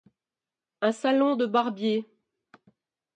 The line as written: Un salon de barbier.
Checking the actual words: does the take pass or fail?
pass